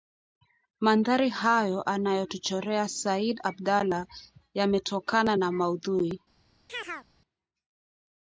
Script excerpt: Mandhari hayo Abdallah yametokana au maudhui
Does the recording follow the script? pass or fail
fail